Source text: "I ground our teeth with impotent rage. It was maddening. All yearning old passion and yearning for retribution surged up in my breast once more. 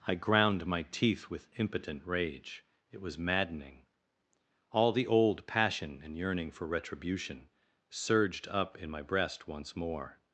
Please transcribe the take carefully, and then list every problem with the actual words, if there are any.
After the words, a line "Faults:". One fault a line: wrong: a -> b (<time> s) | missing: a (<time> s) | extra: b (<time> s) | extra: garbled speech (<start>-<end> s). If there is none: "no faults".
"I ground my teeth with impotent rage. It was maddening. All the old passion and yearning for retribution surged up in my breast once more.
Faults:
wrong: our -> my (0.7 s)
wrong: yearning -> the (4.9 s)